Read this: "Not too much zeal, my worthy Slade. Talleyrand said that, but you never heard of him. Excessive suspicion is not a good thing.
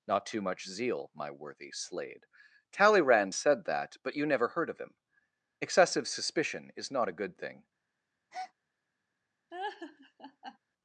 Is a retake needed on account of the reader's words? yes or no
no